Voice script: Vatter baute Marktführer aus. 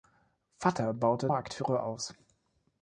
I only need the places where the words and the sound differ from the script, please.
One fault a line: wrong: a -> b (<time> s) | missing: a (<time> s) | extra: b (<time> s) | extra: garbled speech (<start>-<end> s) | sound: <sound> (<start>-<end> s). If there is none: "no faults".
no faults